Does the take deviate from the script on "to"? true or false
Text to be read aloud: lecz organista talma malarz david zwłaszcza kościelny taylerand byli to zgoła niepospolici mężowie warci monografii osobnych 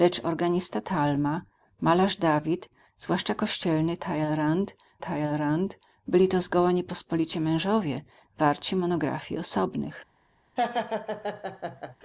false